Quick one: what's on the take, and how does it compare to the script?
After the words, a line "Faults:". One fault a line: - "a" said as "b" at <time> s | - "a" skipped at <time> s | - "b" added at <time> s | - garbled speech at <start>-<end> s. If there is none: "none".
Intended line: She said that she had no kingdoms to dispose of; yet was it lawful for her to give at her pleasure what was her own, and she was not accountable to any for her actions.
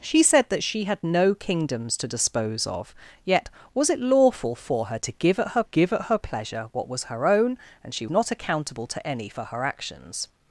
She said that she had no kingdoms to dispose of; yet was it lawful for her to give at her give at her pleasure what was her own, and she not accountable to any for her actions.
Faults:
- "give at her" added at 5.6 s
- "was" skipped at 8.1 s